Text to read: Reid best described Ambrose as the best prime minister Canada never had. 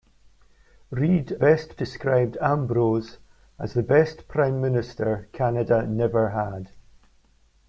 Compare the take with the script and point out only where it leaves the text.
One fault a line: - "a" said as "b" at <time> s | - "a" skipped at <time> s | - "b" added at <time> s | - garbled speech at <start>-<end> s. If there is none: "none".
none